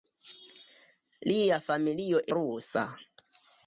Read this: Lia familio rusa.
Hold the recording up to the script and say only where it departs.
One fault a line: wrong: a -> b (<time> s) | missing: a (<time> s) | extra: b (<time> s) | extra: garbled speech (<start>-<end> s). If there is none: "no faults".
no faults